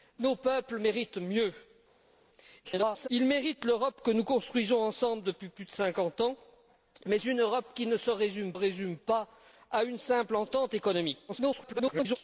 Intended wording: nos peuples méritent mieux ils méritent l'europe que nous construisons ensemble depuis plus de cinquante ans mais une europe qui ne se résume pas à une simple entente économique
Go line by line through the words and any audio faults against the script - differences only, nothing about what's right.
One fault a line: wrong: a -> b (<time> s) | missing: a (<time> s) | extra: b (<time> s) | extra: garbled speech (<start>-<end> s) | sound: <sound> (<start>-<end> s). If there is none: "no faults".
extra: garbled speech (2.6-3.1 s)
extra: résume (8.5 s)
extra: garbled speech (11.3-12.2 s)